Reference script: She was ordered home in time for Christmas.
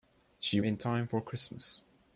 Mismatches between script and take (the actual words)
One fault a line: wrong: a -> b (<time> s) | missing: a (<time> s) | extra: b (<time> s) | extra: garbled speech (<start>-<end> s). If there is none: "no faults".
missing: was ordered home (0.6 s)